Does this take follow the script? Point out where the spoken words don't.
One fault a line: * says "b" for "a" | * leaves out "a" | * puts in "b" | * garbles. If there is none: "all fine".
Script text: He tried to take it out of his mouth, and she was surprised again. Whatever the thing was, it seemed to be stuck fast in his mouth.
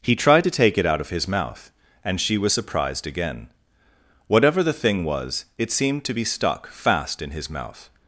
all fine